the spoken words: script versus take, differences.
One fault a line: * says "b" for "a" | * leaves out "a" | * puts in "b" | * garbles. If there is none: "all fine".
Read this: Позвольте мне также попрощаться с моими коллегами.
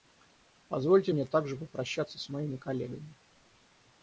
all fine